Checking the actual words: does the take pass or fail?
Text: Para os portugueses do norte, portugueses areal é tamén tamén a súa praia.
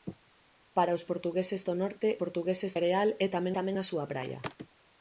pass